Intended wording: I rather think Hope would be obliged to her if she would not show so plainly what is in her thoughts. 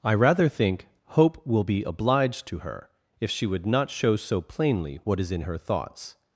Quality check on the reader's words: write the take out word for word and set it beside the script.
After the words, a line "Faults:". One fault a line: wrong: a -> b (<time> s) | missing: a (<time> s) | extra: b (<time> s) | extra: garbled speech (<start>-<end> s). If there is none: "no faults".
I rather think Hope will be obliged to her if she would not show so plainly what is in her thoughts.
Faults:
wrong: would -> will (1.4 s)